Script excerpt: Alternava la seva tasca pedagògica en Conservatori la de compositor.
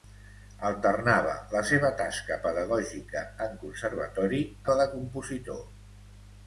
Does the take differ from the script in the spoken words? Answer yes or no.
no